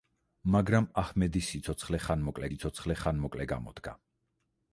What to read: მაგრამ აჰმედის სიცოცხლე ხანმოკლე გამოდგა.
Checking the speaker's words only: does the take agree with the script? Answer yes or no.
no